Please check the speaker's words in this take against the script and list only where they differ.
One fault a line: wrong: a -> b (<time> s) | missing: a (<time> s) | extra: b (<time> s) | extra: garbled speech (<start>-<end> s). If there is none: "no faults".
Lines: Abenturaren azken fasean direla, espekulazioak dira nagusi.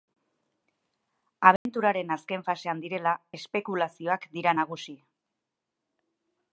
no faults